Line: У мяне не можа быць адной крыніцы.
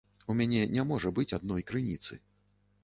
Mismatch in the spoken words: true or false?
false